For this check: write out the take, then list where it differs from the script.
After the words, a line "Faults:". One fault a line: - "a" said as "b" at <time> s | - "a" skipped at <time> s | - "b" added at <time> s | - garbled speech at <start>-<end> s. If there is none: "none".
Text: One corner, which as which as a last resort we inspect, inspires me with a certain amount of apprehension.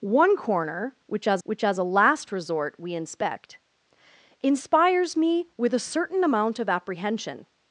One corner, which as which as a last resort we inspect, inspires me with a certain amount of apprehension.
Faults:
none